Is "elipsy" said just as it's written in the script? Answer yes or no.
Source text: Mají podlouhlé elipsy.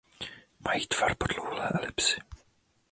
yes